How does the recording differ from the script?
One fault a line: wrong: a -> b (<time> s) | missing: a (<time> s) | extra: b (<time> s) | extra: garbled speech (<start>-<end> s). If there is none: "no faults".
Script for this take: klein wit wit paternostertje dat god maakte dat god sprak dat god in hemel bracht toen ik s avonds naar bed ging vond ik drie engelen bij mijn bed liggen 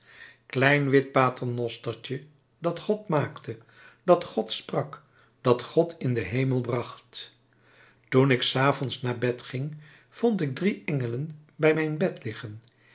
missing: wit (1.1 s)
extra: den (6.1 s)